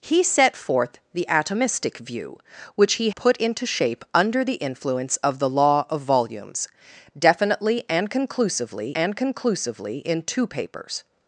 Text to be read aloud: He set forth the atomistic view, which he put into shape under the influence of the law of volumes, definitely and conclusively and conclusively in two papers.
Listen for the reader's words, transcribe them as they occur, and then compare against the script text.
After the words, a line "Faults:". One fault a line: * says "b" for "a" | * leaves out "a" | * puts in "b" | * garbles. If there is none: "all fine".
He set forth the atomistic view, which he put into shape under the influence of the law of volumes, definitely and conclusively and conclusively in two papers.
Faults:
all fine